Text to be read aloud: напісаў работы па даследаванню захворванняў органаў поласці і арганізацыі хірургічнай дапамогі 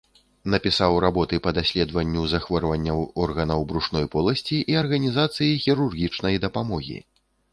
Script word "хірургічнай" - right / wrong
right